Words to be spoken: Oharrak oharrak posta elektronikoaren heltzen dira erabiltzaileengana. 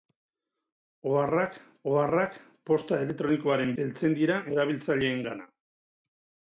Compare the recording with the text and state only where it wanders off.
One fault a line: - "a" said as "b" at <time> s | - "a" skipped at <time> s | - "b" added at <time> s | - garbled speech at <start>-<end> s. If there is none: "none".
none